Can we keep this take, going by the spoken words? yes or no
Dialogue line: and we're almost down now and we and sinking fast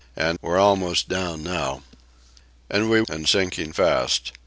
yes